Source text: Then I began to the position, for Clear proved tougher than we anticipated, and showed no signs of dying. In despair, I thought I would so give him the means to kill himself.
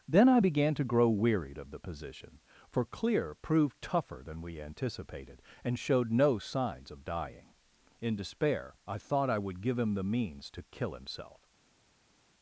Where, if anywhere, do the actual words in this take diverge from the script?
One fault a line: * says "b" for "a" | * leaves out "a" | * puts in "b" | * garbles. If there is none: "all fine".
* puts in "grow wearied of"
* leaves out "so"